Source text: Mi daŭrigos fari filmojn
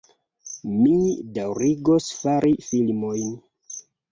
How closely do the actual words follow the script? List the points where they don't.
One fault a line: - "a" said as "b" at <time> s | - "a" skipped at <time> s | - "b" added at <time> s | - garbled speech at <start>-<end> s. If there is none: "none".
none